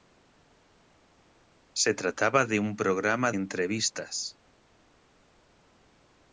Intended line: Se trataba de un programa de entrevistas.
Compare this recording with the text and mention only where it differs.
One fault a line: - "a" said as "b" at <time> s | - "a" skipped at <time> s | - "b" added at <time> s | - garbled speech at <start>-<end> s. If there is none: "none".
- "de" skipped at 3.3 s